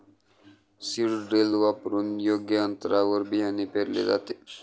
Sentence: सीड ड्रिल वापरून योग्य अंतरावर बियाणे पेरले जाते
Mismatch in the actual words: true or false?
false